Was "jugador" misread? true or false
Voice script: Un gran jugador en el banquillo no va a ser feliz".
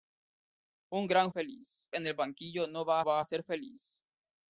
true